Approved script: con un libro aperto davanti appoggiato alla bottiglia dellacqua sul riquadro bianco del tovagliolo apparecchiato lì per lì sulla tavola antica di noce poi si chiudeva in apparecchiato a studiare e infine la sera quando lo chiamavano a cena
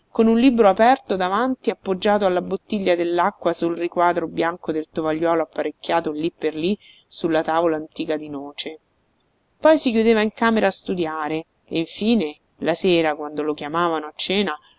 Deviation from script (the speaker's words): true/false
true